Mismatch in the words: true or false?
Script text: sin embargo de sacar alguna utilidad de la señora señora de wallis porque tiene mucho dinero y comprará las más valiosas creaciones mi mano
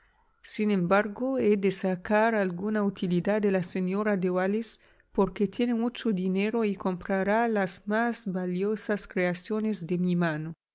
true